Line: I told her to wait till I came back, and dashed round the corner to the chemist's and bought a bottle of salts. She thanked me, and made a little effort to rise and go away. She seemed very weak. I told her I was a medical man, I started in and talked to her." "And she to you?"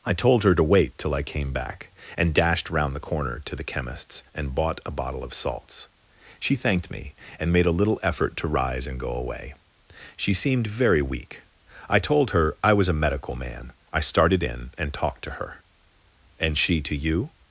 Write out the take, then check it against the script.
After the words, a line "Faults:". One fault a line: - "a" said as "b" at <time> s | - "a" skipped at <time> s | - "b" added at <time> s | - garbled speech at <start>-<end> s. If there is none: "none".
I told her to wait till I came back, and dashed round the corner to the chemist's and bought a bottle of salts. She thanked me, and made a little effort to rise and go away. She seemed very weak. I told her I was a medical man, I started in and talked to her." "And she to you?"
Faults:
none